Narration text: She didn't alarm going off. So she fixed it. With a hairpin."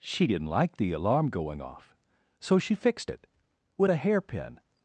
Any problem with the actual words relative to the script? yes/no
yes